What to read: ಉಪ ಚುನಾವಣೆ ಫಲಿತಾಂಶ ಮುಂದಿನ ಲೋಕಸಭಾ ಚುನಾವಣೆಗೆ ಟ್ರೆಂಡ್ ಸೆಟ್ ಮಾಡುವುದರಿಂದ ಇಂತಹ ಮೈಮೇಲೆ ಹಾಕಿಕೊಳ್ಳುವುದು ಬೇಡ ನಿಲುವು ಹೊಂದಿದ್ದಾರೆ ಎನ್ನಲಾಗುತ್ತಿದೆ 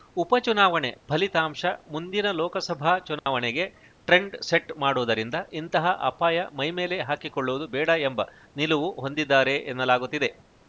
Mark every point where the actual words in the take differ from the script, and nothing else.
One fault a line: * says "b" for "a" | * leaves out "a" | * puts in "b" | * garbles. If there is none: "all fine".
* puts in "ಅಪಾಯ"
* puts in "ಎಂಬ"